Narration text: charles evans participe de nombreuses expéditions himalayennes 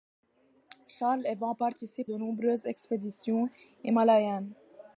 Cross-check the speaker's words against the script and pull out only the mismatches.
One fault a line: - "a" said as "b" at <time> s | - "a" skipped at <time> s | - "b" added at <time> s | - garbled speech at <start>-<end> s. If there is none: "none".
none